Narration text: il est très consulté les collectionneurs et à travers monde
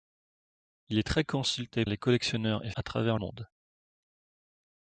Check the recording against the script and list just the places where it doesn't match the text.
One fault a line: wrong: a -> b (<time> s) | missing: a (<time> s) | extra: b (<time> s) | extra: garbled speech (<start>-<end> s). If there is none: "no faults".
no faults